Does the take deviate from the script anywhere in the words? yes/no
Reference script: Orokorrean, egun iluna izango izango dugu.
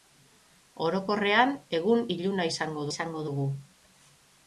no